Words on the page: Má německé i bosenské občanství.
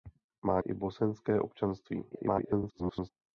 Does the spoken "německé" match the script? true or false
false